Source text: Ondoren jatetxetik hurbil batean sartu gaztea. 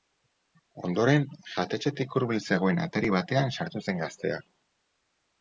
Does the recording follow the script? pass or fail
fail